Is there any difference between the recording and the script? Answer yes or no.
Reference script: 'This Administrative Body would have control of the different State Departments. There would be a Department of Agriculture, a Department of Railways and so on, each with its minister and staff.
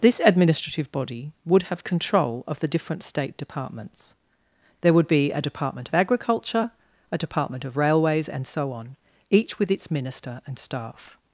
no